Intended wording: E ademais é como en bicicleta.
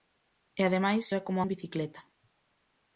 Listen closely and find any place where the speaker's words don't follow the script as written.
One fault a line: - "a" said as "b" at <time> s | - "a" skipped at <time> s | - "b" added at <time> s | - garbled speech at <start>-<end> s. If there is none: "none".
none